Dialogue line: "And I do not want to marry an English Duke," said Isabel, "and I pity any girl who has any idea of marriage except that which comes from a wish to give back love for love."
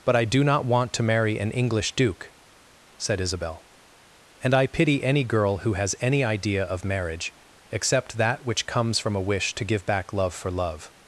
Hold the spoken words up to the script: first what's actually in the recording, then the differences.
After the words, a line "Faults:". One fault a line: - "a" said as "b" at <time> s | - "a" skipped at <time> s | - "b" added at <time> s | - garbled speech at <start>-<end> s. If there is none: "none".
"But I do not want to marry an English Duke," said Isabel, "and I pity any girl who has any idea of marriage except that which comes from a wish to give back love for love."
Faults:
- "And" said as "But" at 0.0 s